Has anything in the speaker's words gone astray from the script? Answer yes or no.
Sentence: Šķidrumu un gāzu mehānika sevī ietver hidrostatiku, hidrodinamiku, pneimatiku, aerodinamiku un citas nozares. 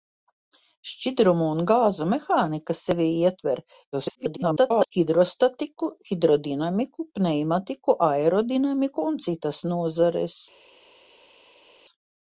yes